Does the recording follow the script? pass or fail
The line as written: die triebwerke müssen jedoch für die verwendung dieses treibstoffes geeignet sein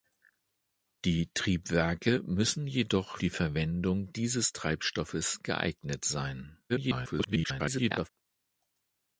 fail